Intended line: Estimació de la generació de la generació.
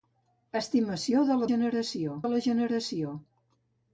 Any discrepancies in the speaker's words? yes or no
no